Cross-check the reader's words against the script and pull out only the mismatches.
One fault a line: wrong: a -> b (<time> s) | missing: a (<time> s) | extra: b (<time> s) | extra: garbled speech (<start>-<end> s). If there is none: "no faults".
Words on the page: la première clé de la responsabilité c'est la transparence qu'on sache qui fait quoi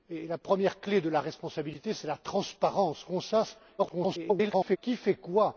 extra: garbled speech (3.8-4.8 s)